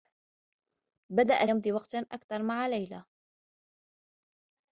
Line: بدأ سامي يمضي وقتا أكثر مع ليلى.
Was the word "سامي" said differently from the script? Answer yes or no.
yes